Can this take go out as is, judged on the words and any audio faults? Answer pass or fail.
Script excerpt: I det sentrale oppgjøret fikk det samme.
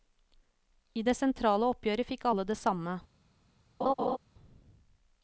fail